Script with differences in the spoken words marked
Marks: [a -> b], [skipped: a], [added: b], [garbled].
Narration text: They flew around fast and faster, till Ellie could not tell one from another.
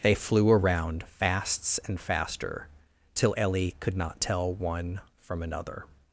They flew around [fast -> fasts] and faster, till Ellie could not tell one from another.